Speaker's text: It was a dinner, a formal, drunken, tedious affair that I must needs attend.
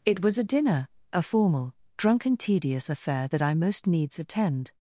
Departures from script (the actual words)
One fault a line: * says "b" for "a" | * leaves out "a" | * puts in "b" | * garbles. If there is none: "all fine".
* says "most" for "must"